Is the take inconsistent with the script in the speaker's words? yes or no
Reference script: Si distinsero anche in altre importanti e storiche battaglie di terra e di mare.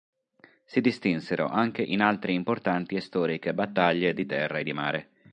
no